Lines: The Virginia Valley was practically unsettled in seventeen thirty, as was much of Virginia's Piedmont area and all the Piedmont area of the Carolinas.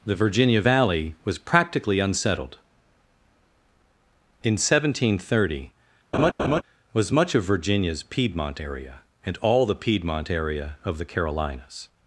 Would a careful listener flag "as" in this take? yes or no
yes